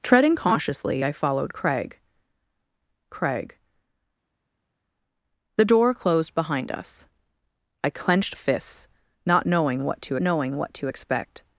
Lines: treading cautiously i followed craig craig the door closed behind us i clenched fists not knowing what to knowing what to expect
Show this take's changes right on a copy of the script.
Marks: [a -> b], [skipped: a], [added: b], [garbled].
treading cautiously i followed craig craig the door closed behind us i clenched fists not knowing what to knowing what to expect